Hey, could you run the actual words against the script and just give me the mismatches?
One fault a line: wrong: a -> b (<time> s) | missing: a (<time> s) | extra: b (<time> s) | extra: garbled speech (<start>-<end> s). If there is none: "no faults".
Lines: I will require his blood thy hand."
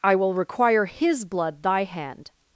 no faults